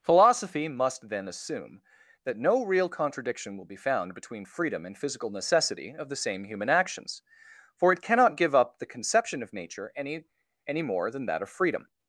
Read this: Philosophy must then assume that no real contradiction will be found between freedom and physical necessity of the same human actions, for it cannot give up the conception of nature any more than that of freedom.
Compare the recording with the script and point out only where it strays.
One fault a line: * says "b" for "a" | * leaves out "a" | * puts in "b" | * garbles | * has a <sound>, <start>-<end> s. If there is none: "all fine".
* puts in "any"